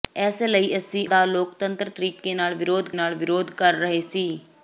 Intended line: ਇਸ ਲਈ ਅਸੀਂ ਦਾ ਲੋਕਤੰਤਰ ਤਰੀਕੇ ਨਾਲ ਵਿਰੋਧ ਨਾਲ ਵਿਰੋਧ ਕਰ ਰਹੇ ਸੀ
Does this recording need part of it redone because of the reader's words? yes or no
no